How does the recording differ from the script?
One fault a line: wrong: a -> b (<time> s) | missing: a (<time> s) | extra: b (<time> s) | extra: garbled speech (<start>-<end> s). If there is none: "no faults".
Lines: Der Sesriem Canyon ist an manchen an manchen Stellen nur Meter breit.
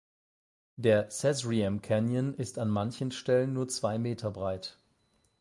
missing: an manchen (3.1 s)
extra: zwei (3.7 s)